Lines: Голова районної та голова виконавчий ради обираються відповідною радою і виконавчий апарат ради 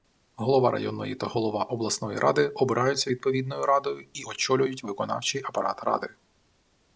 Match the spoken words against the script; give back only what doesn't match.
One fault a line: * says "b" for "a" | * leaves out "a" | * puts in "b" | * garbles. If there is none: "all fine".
* says "обласної" for "виконавчий"
* puts in "очолюють"